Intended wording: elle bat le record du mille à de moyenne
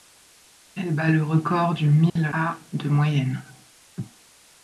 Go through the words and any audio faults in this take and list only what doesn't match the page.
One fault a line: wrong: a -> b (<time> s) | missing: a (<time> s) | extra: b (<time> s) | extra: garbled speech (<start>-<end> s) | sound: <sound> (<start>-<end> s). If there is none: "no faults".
sound: dropout (2.1-2.2 s)